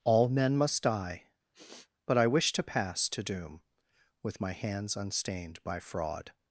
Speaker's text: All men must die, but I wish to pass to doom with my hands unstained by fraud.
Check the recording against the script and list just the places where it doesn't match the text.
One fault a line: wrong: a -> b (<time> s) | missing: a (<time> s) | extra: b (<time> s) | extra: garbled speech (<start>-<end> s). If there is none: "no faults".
no faults